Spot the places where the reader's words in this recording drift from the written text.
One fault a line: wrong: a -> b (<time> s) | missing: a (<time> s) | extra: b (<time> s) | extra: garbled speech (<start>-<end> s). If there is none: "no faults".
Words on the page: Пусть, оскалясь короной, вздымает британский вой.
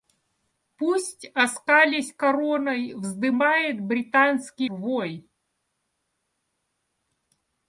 no faults